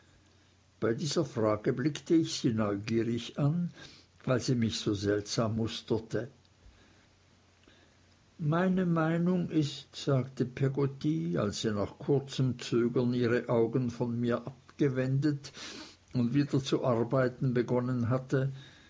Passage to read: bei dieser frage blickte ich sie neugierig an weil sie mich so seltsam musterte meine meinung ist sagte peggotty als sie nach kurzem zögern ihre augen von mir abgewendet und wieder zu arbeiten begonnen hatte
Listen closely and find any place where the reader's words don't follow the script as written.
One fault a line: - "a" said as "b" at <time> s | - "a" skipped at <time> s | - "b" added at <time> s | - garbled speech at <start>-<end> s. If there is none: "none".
none